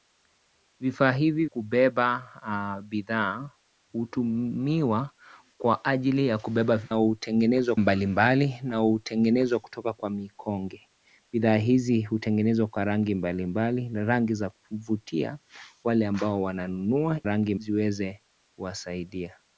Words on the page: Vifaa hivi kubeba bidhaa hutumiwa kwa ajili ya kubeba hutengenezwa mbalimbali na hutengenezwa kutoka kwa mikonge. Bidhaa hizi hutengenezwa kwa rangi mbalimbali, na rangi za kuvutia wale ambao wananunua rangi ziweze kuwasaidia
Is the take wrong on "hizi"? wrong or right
right